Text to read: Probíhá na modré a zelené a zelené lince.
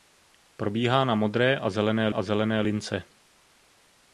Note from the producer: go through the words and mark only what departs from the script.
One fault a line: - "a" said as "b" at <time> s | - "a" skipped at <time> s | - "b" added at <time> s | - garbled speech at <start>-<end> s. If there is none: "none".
none